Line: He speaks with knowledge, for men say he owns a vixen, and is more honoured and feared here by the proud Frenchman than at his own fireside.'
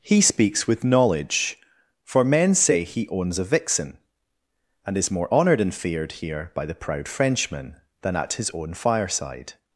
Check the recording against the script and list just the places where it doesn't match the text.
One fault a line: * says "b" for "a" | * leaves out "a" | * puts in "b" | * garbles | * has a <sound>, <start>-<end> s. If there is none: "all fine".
all fine